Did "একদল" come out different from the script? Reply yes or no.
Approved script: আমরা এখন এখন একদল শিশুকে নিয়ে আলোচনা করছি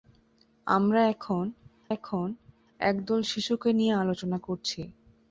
no